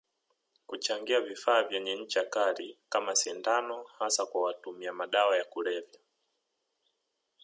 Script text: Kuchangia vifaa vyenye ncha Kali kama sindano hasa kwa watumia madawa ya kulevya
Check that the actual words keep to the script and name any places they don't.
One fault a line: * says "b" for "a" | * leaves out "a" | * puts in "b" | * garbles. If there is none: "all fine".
all fine